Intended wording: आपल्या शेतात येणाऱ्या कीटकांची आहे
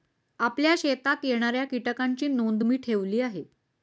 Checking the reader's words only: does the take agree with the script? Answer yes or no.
no